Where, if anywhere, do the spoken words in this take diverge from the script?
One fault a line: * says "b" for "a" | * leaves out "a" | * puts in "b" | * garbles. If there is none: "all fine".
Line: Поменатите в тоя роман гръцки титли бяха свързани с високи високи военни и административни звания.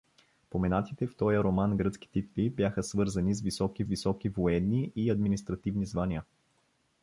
all fine